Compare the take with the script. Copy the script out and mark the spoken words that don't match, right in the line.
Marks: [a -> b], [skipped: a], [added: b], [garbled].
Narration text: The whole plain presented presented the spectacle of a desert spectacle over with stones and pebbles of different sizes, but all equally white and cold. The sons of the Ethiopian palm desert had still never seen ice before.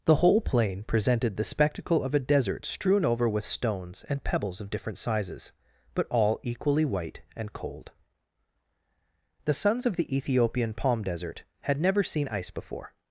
The whole plain presented [skipped: presented] the spectacle of a desert [spectacle -> strewn] over with stones and pebbles of different sizes, but all equally white and cold. The sons of the Ethiopian palm desert had [skipped: still] never seen ice before.